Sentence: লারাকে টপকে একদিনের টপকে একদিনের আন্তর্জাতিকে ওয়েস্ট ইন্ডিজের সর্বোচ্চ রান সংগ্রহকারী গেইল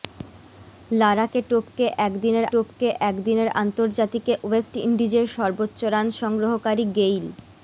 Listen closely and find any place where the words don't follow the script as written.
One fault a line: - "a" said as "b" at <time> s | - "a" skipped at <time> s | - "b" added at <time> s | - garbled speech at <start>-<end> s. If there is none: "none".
none